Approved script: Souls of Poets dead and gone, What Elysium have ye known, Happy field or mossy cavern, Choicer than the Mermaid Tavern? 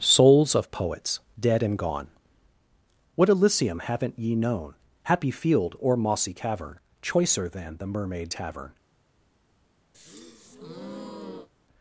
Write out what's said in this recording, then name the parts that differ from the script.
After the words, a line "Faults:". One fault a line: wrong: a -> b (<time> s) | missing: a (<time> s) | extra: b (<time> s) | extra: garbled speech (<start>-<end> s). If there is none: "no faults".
Souls of Poets dead and gone, What Elysium haven't ye known, Happy field or mossy cavern, Choicer than the Mermaid Tavern?
Faults:
wrong: have -> haven't (3.8 s)